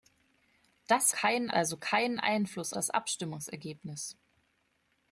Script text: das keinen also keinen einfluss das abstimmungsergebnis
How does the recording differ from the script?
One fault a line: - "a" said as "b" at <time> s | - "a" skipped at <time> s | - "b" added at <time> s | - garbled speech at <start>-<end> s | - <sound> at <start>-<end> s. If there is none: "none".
none